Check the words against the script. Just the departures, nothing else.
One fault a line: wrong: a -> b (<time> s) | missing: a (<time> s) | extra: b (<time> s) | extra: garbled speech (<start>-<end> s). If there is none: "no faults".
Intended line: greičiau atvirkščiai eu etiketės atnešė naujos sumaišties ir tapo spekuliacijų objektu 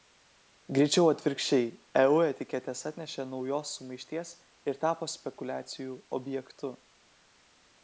no faults